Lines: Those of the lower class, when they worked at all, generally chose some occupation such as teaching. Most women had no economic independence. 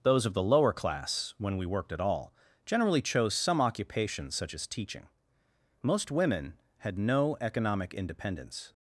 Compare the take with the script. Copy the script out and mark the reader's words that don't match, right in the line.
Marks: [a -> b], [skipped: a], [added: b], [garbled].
Those of the lower class, when [they -> we] worked at all, generally chose some occupation such as teaching. Most women had no economic independence.